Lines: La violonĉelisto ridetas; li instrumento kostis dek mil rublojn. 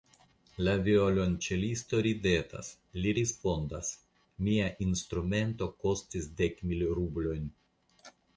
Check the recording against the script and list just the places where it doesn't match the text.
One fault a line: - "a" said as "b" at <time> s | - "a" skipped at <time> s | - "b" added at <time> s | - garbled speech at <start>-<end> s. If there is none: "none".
- "respondas Mia" added at 3.2 s